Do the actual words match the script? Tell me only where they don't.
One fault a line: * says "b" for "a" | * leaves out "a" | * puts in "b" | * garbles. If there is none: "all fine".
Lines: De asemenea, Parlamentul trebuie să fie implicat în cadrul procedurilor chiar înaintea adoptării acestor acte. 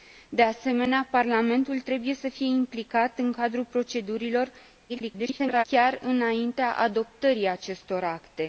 * garbles